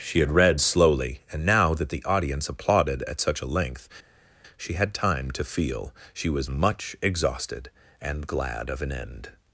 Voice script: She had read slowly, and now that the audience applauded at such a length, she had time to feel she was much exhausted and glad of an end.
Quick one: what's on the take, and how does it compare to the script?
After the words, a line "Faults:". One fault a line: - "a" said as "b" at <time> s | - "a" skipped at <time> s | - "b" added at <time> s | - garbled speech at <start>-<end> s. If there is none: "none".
She had read slowly, and now that the audience applauded at such a length, she had time to feel she was much exhausted and glad of an end.
Faults:
none